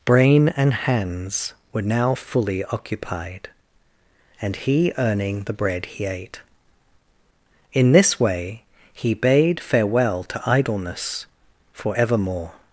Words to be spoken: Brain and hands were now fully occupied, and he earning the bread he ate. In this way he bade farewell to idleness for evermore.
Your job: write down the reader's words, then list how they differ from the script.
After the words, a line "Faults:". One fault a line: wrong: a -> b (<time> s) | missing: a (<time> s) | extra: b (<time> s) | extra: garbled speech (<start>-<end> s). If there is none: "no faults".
Brain and hands were now fully occupied, and he earning the bread he ate. In this way he bade farewell to idleness for evermore.
Faults:
no faults